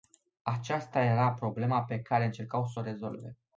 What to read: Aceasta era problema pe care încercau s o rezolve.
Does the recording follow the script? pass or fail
pass